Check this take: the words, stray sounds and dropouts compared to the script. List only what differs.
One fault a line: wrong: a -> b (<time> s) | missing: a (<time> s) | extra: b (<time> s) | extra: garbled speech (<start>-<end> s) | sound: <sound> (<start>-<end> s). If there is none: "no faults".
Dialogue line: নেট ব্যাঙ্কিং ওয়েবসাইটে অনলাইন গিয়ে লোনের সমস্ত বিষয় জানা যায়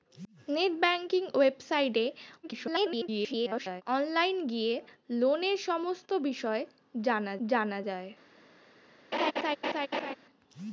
extra: garbled speech (2.4-3.8 s)
extra: জানা (7.5 s)
sound: laugh (9.1-10.2 s)